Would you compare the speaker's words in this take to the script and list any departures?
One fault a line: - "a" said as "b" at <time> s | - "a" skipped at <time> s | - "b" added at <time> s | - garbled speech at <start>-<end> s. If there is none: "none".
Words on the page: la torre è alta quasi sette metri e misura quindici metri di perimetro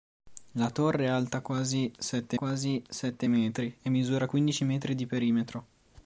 - "quasi sette" added at 2.3 s